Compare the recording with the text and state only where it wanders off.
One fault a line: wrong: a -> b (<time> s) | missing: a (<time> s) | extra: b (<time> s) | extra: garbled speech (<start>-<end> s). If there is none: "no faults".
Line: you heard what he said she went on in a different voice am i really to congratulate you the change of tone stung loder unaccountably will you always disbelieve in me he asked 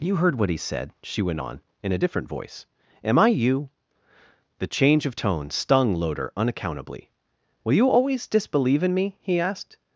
missing: really to congratulate (3.3 s)